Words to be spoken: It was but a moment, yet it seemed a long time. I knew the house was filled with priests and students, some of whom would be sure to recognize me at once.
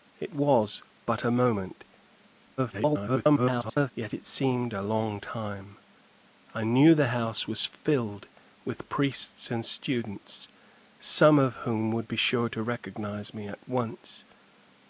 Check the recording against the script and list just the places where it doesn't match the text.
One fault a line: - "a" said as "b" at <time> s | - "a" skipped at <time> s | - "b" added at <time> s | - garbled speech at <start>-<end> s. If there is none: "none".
- garbled speech at 2.6-3.9 s